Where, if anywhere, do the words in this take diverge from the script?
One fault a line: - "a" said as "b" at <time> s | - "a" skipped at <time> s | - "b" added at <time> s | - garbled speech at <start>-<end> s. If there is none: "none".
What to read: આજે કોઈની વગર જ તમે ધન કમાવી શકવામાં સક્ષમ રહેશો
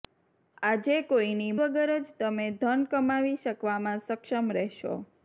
none